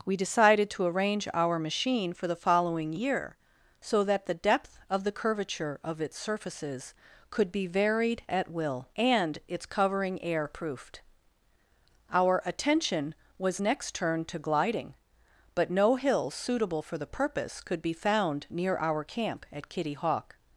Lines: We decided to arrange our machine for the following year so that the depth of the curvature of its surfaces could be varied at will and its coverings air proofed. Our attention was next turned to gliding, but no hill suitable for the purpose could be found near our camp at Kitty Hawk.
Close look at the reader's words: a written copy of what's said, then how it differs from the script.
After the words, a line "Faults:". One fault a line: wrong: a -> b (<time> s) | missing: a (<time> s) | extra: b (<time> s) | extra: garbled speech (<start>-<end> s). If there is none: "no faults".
We decided to arrange our machine for the following year so that the depth of the curvature of its surfaces could be varied at will and its covering air proofed. Our attention was next turned to gliding, but no hill suitable for the purpose could be found near our camp at Kitty Hawk.
Faults:
wrong: coverings -> covering (9.7 s)